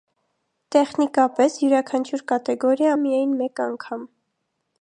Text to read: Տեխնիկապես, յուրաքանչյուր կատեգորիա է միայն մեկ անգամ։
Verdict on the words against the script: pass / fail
pass